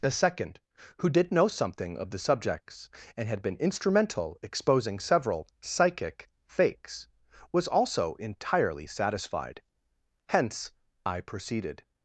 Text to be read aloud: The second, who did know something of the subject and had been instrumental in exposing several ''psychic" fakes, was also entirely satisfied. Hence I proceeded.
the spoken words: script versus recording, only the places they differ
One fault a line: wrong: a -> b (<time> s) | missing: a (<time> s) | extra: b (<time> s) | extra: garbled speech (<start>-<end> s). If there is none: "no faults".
wrong: subject -> subjects (2.2 s)
missing: in (4.4 s)